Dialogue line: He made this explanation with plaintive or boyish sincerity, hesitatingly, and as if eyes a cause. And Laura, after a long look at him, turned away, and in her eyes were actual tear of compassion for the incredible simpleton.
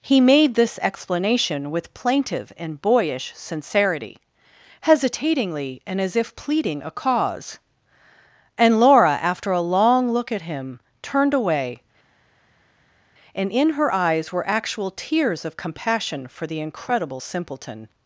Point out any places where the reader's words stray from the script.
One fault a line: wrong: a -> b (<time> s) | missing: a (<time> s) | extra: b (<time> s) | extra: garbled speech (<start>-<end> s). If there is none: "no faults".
wrong: or -> and (2.6 s)
wrong: eyes -> pleading (6.3 s)
wrong: tear -> tears (14.9 s)